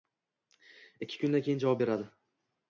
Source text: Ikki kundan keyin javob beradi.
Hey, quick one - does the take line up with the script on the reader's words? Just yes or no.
yes